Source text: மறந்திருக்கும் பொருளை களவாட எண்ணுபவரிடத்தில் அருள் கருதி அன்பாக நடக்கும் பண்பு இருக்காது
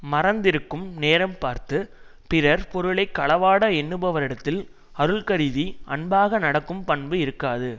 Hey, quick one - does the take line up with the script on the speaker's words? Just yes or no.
no